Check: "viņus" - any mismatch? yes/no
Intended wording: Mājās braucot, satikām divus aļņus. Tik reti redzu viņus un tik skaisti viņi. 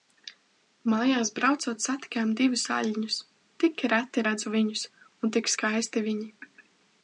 no